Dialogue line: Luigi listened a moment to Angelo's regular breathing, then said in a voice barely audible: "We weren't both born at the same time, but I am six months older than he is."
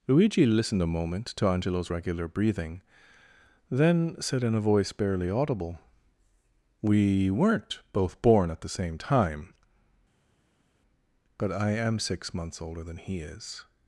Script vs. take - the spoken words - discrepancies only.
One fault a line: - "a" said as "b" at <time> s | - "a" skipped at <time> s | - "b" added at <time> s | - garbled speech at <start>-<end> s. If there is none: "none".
none